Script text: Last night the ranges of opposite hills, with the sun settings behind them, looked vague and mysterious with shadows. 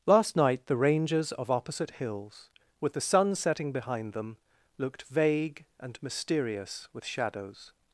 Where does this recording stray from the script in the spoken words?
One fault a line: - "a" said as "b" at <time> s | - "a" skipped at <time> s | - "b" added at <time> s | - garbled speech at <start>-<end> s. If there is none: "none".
- "settings" said as "setting" at 3.4 s